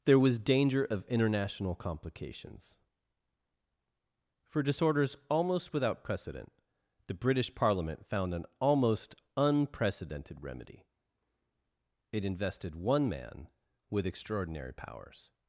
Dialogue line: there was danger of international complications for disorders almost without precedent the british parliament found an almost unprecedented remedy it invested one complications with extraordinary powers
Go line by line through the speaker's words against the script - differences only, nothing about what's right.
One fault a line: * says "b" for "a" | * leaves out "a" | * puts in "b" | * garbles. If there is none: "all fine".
* says "man" for "complications"